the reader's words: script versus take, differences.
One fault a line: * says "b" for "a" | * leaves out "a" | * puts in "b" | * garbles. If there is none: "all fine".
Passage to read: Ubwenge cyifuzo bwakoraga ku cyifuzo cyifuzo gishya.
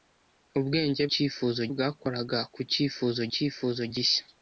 all fine